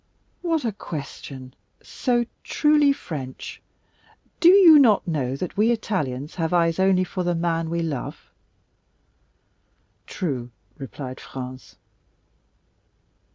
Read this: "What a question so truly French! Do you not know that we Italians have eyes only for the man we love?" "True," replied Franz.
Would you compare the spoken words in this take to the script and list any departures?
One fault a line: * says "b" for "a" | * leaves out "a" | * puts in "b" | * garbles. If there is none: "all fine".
all fine